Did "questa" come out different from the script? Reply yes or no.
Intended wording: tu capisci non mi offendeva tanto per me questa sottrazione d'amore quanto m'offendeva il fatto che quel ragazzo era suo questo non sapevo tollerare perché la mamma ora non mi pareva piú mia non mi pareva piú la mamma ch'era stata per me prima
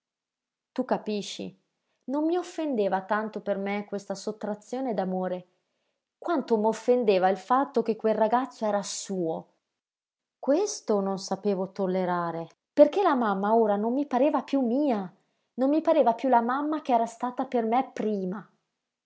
no